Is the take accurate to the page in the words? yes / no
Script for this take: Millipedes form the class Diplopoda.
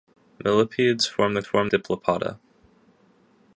no